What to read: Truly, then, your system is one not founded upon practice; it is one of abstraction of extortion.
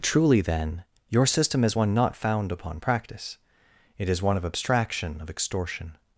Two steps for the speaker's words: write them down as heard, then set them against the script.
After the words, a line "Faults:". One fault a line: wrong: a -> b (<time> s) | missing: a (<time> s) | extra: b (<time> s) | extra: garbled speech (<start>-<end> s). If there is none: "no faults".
Truly, then, your system is one not found upon practice; it is one of abstraction of extortion.
Faults:
wrong: founded -> found (2.2 s)